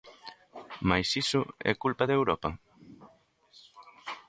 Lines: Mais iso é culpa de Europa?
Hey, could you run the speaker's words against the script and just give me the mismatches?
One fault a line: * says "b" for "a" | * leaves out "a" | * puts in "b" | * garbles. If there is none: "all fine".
all fine